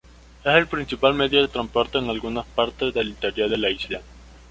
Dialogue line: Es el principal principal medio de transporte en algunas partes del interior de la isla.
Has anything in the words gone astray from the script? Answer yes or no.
yes